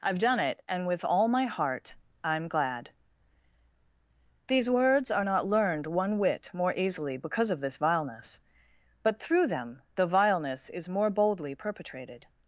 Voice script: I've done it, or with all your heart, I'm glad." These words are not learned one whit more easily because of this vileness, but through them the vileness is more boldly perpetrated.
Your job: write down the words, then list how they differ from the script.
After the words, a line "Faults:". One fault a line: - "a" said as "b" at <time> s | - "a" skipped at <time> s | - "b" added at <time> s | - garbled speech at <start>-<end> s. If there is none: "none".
I've done it, and with all my heart, I'm glad." These words are not learned one whit more easily because of this vileness, but through them the vileness is more boldly perpetrated.
Faults:
- "or" said as "and" at 0.7 s
- "your" said as "my" at 1.3 s